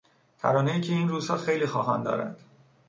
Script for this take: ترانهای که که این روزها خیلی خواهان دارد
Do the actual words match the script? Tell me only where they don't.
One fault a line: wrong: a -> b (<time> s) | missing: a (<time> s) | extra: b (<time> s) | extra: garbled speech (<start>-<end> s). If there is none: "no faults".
missing: که (0.9 s)